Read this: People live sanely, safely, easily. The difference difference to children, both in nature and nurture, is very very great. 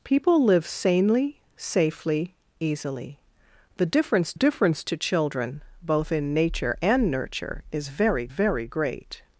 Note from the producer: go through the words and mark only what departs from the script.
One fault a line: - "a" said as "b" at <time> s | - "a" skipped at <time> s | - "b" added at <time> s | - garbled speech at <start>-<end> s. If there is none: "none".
none